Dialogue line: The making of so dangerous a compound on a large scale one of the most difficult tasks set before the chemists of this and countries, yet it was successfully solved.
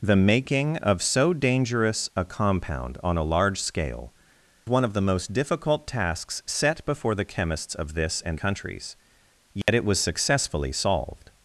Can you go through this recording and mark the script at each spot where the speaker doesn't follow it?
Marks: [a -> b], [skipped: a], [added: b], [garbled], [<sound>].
The making of so dangerous a compound on a large scale one of the most difficult tasks set before the chemists of this and countries, yet [dropout] it was successfully solved.